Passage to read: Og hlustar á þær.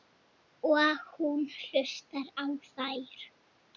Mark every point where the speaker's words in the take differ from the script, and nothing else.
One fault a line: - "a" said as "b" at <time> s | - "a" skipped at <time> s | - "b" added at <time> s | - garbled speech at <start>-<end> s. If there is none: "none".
- "hún" added at 1.1 s